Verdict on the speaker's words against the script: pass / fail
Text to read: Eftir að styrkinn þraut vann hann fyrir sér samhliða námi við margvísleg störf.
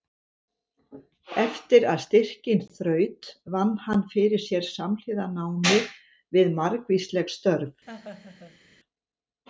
pass